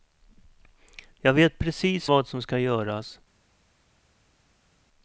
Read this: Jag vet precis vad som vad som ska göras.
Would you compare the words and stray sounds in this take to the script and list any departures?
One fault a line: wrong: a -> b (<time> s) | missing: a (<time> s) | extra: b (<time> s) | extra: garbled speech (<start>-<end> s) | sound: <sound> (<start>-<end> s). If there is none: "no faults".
missing: vad som (2.4 s)